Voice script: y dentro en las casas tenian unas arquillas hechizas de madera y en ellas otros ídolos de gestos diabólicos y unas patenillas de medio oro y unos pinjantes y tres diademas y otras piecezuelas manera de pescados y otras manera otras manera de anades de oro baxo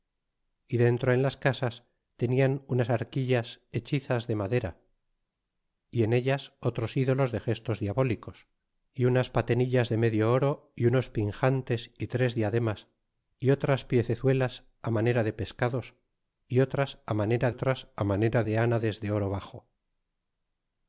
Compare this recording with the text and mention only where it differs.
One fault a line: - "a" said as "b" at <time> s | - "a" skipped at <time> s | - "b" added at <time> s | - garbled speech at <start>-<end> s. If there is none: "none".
none